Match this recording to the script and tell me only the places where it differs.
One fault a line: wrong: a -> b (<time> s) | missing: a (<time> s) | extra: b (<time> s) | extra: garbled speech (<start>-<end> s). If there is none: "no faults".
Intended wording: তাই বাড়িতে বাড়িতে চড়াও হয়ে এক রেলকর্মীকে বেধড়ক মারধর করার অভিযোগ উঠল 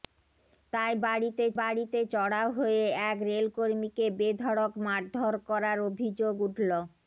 no faults